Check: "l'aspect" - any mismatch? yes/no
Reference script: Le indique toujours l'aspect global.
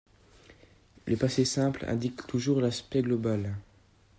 no